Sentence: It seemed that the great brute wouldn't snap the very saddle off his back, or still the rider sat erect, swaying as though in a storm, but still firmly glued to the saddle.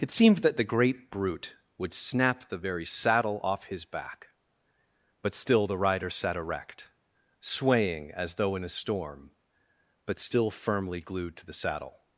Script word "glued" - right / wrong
right